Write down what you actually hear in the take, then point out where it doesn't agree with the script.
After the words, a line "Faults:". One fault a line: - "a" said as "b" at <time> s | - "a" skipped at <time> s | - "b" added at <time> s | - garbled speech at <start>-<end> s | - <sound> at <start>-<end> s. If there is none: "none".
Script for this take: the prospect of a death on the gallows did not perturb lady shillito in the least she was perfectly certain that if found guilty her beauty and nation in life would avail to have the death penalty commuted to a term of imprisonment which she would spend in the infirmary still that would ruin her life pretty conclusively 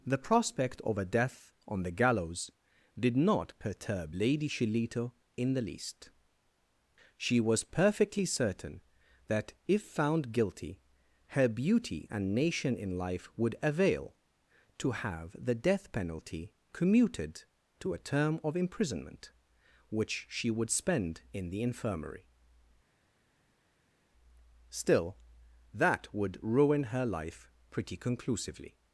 the prospect of a death on the gallows did not perturb lady shillito in the least she was perfectly certain that if found guilty her beauty and nation in life would avail to have the death penalty commuted to a term of imprisonment which she would spend in the infirmary still that would ruin her life pretty conclusively
Faults:
none